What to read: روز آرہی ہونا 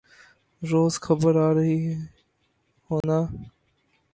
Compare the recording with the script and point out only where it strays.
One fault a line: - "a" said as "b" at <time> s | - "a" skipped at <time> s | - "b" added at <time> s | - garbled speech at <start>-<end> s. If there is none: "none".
- "خبر" added at 1.1 s